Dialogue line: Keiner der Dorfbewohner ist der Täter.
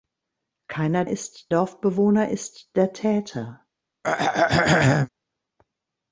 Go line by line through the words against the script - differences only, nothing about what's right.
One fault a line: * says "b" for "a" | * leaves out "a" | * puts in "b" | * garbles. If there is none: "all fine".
* says "ist" for "der"